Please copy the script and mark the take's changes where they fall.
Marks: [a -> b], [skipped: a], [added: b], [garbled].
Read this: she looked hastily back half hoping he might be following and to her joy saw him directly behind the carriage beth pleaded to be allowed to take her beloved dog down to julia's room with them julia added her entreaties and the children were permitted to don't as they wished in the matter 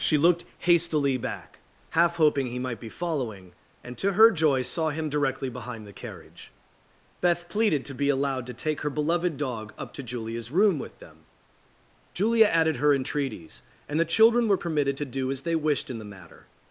she looked hastily back half hoping he might be following and to her joy saw him directly behind the carriage beth pleaded to be allowed to take her beloved dog [down -> up] to julia's room with them julia added her entreaties and the children were permitted to [don't -> do] as they wished in the matter